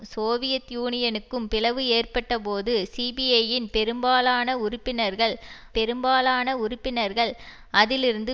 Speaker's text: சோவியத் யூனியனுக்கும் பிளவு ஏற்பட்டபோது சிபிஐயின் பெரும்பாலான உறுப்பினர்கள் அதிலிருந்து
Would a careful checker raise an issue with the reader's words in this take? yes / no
yes